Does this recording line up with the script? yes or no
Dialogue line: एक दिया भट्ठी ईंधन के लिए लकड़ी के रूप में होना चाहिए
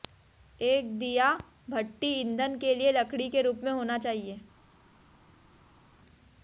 yes